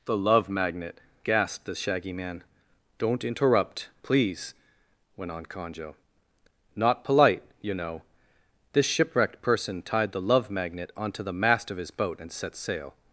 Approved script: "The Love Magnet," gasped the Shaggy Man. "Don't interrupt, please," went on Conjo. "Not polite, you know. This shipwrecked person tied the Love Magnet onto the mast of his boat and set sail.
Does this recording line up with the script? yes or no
yes